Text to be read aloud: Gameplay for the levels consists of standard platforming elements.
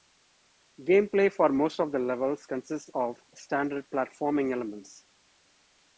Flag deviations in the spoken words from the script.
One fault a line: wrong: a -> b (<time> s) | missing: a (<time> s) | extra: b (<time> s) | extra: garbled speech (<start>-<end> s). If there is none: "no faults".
extra: most of (1.5 s)